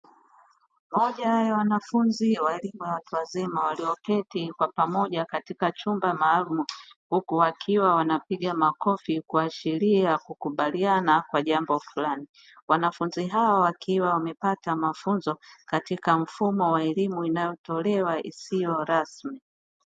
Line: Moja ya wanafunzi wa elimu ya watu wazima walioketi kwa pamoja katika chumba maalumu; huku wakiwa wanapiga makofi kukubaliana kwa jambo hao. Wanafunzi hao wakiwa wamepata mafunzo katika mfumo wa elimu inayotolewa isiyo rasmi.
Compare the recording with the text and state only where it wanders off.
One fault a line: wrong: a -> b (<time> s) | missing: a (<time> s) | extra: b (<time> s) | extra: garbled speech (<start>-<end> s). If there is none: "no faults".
extra: kuashiria (9.2 s)
wrong: hao -> fulani (11.8 s)